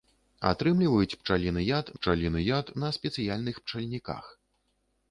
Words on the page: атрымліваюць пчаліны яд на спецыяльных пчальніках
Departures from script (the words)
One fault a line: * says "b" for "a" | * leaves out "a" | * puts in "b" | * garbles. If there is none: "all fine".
* puts in "пчаліны яд"